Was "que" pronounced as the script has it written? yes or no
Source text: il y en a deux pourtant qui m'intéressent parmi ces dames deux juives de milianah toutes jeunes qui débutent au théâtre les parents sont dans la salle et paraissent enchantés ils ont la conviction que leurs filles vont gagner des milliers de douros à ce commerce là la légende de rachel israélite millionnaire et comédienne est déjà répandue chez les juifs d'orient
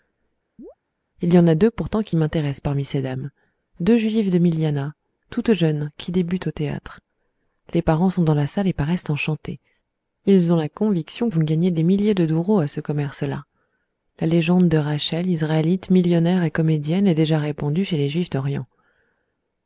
no